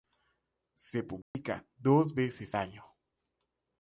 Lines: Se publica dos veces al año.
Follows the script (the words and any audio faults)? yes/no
no